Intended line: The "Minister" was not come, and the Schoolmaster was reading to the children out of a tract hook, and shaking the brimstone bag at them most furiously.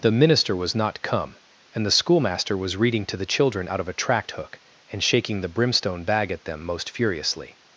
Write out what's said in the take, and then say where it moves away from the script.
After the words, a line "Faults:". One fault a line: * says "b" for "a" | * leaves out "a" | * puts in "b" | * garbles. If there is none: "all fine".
The "Minister" was not come, and the Schoolmaster was reading to the children out of a tract hook, and shaking the brimstone bag at them most furiously.
Faults:
all fine